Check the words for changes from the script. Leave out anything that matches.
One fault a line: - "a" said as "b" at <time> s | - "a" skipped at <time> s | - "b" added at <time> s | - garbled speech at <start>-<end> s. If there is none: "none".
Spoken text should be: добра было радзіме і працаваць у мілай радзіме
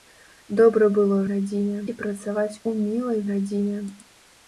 none